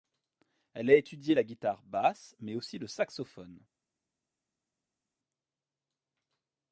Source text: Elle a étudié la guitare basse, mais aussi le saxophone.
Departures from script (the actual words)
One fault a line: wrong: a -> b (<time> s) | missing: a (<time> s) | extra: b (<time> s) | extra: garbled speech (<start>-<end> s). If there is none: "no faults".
no faults